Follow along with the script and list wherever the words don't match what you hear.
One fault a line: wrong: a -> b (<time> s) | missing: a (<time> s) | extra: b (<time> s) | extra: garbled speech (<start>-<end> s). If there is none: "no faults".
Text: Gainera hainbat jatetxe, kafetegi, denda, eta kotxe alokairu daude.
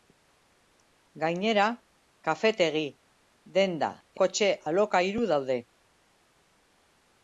missing: hainbat jatetxe (1.6 s)
missing: eta (3.9 s)